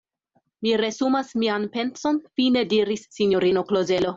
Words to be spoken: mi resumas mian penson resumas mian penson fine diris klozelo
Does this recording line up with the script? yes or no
no